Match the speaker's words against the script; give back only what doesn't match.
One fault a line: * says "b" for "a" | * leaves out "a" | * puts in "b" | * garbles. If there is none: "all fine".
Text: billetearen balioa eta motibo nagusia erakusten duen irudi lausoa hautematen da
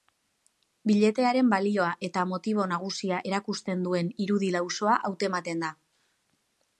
all fine